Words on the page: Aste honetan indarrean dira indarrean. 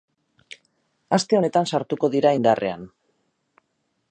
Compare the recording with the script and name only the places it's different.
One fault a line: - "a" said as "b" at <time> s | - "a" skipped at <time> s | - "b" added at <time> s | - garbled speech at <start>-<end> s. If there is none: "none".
- "indarrean" said as "sartuko" at 1.7 s